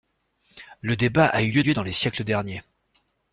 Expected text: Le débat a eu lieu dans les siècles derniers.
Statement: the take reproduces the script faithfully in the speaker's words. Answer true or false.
false